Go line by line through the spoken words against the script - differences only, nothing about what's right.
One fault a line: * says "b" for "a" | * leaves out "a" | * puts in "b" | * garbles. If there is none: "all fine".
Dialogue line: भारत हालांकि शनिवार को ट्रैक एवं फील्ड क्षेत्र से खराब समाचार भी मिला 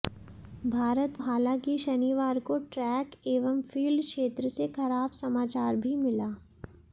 all fine